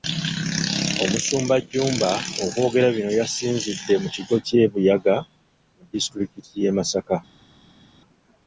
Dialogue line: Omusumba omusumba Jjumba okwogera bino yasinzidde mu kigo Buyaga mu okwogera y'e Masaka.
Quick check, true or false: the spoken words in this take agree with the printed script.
false